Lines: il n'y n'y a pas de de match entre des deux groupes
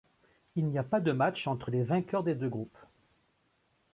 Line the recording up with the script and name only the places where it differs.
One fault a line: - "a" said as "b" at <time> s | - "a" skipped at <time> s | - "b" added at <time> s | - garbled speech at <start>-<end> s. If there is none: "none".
- "n'y" skipped at 0.8 s
- "de" skipped at 1.1 s
- "les vainqueurs" added at 1.7 s